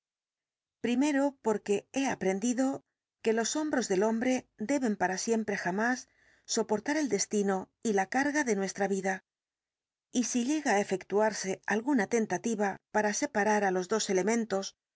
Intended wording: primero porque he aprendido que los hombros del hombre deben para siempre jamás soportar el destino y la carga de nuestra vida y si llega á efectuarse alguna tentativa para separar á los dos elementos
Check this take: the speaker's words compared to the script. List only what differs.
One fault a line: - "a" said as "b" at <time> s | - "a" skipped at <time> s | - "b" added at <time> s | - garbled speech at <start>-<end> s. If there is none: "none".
none